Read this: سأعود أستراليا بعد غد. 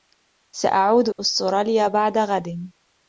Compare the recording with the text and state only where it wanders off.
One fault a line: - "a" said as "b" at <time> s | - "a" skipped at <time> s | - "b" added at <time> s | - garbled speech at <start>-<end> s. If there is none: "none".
none